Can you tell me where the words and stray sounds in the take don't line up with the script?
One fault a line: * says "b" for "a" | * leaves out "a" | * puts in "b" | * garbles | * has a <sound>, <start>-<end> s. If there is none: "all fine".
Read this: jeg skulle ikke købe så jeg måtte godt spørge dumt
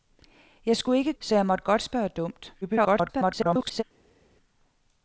* leaves out "købe"
* garbles